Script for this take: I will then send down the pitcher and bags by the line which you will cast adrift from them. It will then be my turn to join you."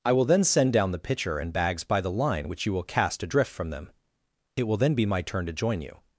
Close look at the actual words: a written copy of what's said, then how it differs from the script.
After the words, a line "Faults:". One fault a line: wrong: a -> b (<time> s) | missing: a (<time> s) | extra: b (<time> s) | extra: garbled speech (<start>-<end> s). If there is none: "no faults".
I will then send down the pitcher and bags by the line which you will cast adrift from them. It will then be my turn to join you."
Faults:
no faults